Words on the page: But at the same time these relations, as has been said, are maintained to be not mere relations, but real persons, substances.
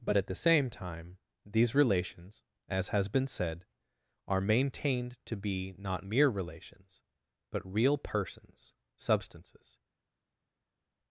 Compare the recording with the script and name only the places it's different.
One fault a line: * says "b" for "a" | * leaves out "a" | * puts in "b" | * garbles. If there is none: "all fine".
all fine